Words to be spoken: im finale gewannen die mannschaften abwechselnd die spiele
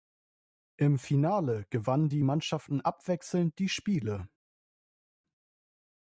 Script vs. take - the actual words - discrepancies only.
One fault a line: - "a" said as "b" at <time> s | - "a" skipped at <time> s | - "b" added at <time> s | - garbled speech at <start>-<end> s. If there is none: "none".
none